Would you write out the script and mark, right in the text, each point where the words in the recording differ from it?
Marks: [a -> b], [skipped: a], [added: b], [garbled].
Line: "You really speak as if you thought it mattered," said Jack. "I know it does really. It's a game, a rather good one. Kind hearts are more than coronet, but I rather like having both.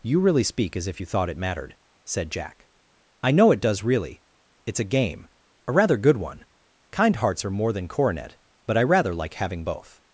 "You really speak as if you thought it mattered," said Jack. "I know it does really. It's a game, a rather good one. Kind hearts are more than coronet, but I rather like having both.